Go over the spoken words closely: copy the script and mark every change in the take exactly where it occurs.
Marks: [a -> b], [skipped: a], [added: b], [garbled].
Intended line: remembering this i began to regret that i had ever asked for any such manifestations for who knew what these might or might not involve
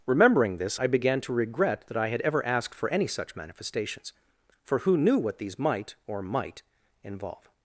remembering this i began to regret that i had ever asked for any such manifestations for who knew what these might or might [skipped: not] involve